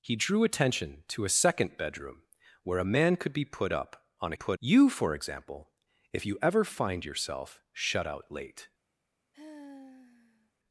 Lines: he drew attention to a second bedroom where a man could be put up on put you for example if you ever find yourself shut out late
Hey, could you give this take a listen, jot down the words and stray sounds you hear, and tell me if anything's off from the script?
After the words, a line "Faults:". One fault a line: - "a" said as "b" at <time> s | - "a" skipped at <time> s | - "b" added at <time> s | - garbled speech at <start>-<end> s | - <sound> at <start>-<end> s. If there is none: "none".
he drew attention to a second bedroom where a man could be put up on put you for example if you ever find yourself shut out late
Faults:
- sigh at 9.3-10.5 s